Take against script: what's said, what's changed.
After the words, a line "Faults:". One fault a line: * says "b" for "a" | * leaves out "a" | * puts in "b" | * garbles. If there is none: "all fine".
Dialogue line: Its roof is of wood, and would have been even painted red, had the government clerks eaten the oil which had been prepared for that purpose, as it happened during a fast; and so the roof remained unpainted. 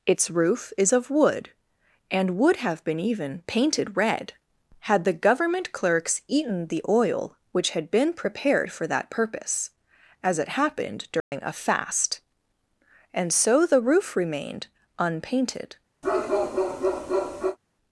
Its roof is of wood, and would have been even painted red, had the government clerks eaten the oil which had been prepared for that purpose, as it happened during a fast; and so the roof remained unpainted.
Faults:
all fine